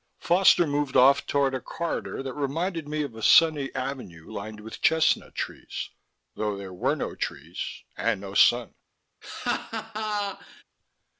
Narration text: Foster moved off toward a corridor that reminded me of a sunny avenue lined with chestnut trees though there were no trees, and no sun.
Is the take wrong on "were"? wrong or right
right